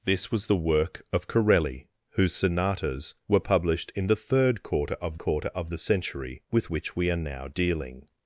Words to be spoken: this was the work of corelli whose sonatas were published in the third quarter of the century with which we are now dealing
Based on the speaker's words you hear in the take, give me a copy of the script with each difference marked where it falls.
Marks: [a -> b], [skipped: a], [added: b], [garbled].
this was the work of corelli whose sonatas were published in the third quarter of [added: quarter of] the century with which we are now dealing